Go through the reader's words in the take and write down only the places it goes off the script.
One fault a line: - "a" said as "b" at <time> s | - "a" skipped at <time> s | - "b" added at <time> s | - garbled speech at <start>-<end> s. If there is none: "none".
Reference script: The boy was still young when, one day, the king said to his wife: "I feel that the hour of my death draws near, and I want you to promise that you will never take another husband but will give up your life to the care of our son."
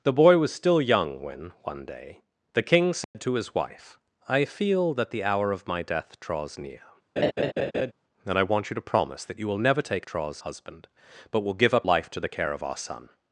- "another" said as "draws" at 10.0 s
- "your" skipped at 11.9 s